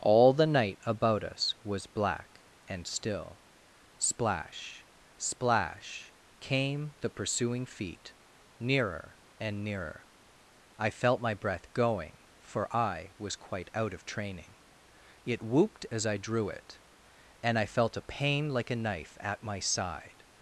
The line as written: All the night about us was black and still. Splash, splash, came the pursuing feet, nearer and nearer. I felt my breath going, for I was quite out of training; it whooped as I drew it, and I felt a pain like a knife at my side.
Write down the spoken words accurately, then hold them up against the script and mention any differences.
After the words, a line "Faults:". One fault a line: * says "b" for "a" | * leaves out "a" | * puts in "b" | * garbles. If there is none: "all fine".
All the night about us was black and still. Splash, splash, came the pursuing feet, nearer and nearer. I felt my breath going, for I was quite out of training; it whooped as I drew it, and I felt a pain like a knife at my side.
Faults:
all fine